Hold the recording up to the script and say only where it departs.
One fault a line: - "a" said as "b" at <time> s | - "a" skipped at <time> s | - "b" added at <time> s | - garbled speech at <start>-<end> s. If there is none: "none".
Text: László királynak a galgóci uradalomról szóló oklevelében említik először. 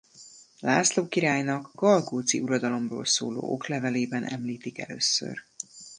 - "a" skipped at 1.7 s